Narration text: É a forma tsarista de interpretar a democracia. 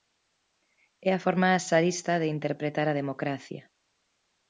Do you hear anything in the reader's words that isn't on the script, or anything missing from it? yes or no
no